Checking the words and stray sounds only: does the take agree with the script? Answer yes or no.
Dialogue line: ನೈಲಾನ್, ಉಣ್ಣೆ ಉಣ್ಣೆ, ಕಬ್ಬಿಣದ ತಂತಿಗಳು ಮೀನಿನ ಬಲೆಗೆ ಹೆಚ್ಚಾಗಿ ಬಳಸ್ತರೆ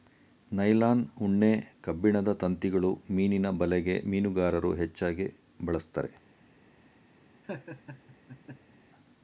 no